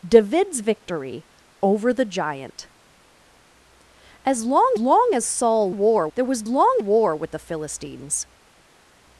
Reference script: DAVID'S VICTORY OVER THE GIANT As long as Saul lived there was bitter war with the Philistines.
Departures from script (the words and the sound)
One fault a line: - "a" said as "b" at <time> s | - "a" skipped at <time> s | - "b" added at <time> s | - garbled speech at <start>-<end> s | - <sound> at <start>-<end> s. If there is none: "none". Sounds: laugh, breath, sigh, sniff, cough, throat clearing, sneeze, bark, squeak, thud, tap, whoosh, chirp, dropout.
- "long" added at 4.8 s
- "lived" said as "war" at 5.7 s
- "bitter" said as "long" at 6.5 s